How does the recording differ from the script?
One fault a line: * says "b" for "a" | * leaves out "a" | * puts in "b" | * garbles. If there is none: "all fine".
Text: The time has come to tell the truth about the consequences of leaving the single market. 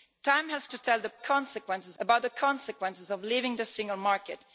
* leaves out "come"
* says "consequences" for "truth"